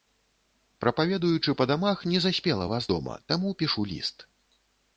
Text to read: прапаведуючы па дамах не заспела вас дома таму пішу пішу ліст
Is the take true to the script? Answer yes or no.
no